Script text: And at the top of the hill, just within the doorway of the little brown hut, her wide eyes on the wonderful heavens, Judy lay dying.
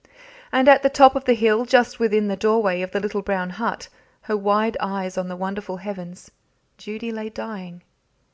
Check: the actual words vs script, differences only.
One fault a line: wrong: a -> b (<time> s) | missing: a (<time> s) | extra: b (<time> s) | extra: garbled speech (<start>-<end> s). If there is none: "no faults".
no faults